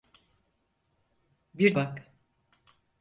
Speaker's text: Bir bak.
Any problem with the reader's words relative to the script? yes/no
no